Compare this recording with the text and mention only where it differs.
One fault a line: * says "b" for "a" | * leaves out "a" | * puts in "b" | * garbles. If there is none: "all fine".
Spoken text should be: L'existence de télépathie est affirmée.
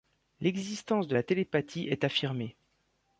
* puts in "la"